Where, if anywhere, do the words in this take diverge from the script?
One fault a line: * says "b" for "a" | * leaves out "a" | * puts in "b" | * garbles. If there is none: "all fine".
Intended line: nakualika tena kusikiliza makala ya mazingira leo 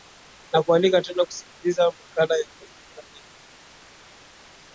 all fine